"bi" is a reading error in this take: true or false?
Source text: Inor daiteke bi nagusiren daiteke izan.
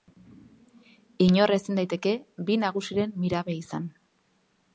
false